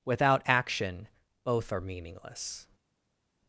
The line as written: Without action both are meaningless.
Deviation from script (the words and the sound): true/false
false